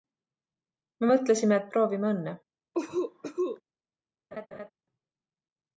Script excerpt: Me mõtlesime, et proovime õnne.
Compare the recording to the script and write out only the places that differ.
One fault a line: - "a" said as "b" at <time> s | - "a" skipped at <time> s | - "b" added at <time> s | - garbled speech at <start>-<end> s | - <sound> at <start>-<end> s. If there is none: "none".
- cough at 2.7-3.6 s
- laugh at 4.3-4.7 s